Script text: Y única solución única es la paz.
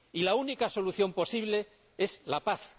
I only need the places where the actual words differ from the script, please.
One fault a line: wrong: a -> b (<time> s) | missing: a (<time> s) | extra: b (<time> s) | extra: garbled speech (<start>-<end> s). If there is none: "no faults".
extra: la (0.2 s)
wrong: única -> posible (1.1 s)